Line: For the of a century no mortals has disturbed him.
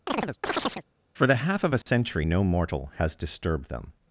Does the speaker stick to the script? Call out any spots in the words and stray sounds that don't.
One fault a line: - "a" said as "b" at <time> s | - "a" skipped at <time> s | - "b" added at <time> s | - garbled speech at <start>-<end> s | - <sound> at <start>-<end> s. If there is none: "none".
- chirp at 0.1-0.9 s
- "half" added at 1.4 s
- dropout at 1.8-1.9 s
- "mortals" said as "mortal" at 2.4 s
- "him" said as "them" at 3.7 s